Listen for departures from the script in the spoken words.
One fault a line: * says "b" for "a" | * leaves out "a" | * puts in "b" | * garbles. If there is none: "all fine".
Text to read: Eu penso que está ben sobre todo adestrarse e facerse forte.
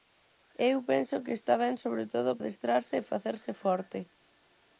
all fine